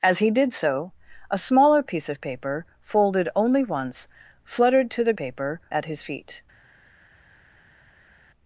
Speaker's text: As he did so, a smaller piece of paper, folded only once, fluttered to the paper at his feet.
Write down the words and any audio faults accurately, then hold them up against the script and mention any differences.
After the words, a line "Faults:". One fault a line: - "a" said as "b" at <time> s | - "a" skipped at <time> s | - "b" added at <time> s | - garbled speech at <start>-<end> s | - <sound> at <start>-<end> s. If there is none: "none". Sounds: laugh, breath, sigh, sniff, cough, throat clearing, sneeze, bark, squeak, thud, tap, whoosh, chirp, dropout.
As he did so, a smaller piece of paper, folded only once, fluttered to the paper at his feet.
Faults:
none